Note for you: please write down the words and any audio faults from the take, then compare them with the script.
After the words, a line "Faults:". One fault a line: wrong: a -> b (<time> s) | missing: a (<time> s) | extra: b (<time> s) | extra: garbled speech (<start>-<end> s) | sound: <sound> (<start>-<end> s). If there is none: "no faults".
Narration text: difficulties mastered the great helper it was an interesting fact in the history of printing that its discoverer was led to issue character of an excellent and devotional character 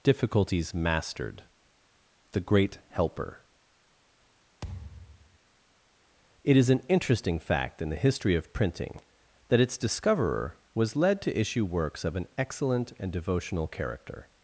difficulties mastered the great helper it is an interesting fact in the history of printing that its discoverer was led to issue works of an excellent and devotional character
Faults:
sound: thud (4.6-5.4 s)
wrong: was -> is (6.6 s)
wrong: character -> works (11.6 s)